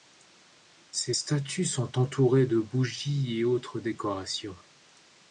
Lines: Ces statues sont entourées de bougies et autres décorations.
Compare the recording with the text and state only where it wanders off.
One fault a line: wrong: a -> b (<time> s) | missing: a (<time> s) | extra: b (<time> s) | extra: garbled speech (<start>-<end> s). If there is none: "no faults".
no faults